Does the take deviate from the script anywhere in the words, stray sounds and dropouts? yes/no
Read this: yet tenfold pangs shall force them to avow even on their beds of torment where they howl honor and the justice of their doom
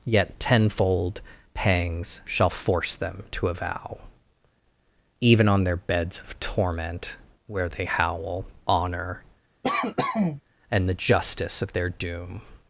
yes